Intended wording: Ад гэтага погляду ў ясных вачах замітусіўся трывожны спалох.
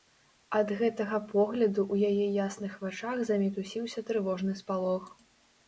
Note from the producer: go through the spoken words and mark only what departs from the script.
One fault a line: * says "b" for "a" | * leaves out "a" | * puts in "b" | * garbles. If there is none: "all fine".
* puts in "яе"